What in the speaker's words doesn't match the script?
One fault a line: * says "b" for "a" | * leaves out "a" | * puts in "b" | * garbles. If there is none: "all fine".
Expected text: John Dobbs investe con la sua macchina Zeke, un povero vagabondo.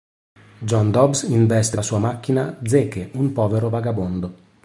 * leaves out "con"